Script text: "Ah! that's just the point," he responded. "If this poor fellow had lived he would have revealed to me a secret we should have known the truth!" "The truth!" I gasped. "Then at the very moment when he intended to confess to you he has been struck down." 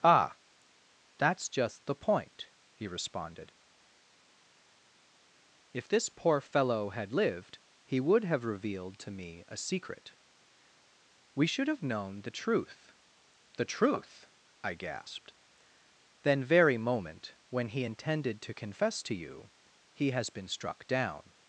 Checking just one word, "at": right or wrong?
wrong